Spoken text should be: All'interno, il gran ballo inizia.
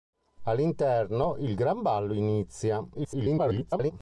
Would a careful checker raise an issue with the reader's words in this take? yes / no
yes